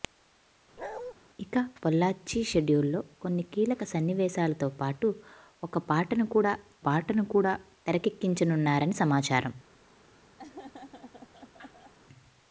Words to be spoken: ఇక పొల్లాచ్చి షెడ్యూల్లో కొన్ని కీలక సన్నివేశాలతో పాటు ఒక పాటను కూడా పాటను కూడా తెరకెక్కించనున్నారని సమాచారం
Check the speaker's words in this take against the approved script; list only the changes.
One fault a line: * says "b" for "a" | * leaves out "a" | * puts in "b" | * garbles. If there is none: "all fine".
all fine